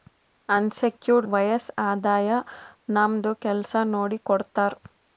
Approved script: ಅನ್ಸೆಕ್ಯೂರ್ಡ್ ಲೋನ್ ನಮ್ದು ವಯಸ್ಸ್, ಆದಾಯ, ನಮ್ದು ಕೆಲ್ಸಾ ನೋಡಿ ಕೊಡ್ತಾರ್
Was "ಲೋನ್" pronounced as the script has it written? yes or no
no